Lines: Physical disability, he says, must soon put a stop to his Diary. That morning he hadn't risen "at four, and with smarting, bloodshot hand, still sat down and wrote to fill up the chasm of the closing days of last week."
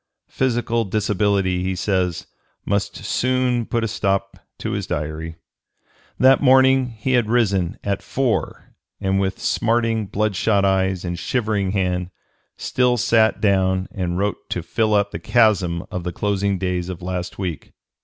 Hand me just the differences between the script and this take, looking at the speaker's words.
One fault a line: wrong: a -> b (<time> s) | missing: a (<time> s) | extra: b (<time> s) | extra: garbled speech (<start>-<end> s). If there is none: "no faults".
wrong: hadn't -> had (7.1 s)
extra: eyes and shivering (10.7 s)